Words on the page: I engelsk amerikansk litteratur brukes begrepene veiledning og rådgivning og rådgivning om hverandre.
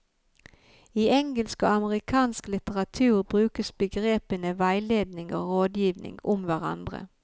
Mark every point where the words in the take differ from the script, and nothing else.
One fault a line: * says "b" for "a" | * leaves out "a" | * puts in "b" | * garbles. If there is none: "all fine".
* puts in "og"
* leaves out "og rådgivning"